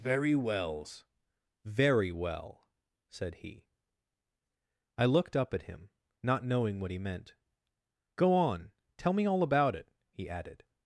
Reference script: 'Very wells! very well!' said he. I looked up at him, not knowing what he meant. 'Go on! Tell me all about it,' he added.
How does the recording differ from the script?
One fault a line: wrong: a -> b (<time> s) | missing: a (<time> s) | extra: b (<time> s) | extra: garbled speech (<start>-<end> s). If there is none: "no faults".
no faults